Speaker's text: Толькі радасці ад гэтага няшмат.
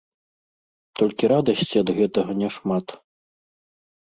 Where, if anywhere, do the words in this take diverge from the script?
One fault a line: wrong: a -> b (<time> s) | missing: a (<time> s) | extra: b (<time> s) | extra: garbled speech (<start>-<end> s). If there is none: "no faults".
no faults